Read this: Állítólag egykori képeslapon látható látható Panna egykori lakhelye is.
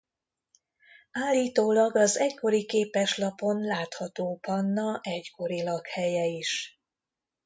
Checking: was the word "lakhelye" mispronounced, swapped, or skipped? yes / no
no